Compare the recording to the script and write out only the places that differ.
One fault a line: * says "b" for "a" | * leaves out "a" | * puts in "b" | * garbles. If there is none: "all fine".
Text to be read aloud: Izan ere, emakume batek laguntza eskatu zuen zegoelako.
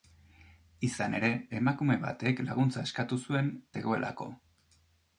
all fine